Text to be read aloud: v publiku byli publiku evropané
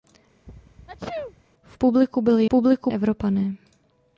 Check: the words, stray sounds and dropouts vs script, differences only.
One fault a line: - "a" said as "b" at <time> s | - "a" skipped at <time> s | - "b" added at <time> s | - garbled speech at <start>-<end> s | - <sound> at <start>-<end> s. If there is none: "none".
- sneeze at 0.5-1.4 s